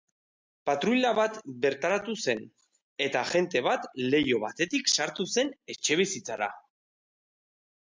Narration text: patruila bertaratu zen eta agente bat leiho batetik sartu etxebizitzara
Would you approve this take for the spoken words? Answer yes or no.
no